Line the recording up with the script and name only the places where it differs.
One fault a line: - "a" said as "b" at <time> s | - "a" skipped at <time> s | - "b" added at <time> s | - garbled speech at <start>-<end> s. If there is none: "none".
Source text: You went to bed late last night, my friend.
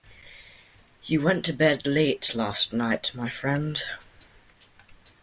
none